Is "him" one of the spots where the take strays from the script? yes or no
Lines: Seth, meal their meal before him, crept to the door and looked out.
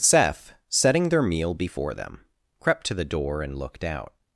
yes